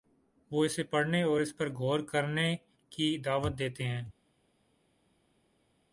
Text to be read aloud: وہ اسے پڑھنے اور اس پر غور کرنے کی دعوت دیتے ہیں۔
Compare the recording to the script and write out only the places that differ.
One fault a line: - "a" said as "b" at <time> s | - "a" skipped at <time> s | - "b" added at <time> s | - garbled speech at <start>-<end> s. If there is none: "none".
none